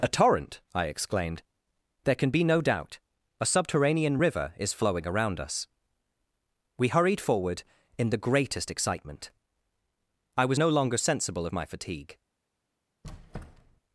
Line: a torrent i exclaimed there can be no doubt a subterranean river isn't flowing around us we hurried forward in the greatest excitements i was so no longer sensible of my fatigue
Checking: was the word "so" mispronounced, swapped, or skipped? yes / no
yes